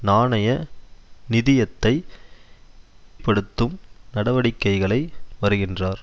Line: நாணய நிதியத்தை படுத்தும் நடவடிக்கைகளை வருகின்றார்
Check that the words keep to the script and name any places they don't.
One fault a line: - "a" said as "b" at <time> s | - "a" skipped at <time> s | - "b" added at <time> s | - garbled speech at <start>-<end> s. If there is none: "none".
none